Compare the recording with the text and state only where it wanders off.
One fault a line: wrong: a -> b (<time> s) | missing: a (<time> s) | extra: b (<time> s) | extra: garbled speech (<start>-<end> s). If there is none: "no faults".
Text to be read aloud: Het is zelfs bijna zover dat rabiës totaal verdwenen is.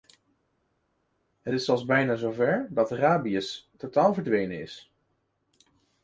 no faults